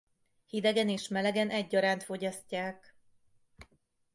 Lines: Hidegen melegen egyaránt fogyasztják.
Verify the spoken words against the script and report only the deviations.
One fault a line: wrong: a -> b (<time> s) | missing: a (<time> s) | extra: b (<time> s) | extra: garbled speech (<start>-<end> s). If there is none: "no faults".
extra: és (0.9 s)